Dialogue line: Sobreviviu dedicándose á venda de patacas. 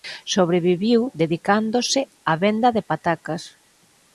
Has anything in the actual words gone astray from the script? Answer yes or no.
no